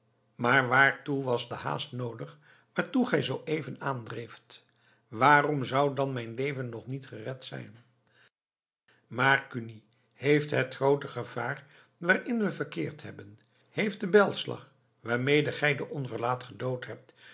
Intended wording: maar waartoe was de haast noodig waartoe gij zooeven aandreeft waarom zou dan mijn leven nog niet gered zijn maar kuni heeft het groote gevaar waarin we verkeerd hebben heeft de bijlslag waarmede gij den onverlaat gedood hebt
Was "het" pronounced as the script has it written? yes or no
yes